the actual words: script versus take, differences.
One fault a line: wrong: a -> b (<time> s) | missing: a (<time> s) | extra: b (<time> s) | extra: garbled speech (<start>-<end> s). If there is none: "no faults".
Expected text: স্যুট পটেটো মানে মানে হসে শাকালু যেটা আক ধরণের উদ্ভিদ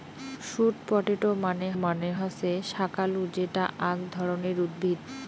no faults